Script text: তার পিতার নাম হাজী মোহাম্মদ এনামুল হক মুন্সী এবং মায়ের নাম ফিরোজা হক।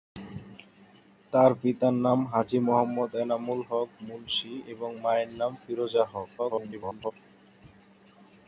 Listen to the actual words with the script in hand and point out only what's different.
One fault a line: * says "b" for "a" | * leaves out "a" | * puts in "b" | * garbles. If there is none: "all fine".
* garbles